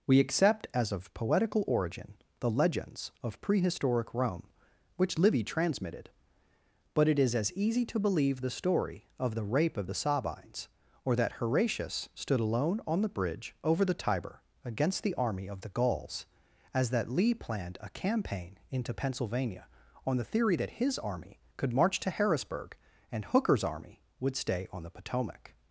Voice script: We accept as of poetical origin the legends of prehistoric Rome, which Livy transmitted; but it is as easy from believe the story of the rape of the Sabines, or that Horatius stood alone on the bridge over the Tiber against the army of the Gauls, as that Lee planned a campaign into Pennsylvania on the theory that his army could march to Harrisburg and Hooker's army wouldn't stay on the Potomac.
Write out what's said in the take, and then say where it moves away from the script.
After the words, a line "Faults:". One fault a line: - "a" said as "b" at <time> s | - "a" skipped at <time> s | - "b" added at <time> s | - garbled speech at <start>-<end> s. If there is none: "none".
We accept as of poetical origin the legends of prehistoric Rome, which Livy transmitted; but it is as easy to believe the story of the rape of the Sabines, or that Horatius stood alone on the bridge over the Tiber against the army of the Gauls, as that Lee planned a campaign into Pennsylvania on the theory that his army could march to Harrisburg and Hooker's army would stay on the Potomac.
Faults:
- "from" said as "to" at 7.9 s
- "wouldn't" said as "would" at 24.2 s